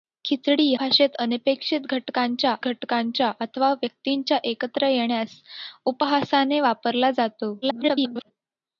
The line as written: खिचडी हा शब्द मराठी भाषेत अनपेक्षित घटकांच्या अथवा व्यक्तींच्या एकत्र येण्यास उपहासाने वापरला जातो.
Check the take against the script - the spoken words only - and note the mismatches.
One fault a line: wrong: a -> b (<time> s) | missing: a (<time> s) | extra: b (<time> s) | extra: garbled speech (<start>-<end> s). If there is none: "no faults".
missing: हा शब्द मराठी (0.7 s)
extra: घटकांच्या (2.6 s)
extra: garbled speech (7.6-8.3 s)